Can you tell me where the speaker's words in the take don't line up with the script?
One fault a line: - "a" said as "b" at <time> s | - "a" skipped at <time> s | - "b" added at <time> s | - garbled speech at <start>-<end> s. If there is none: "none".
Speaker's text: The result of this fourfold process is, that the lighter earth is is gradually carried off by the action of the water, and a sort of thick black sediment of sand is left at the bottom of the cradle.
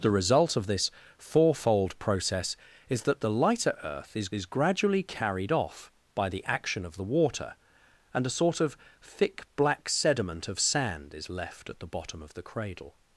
none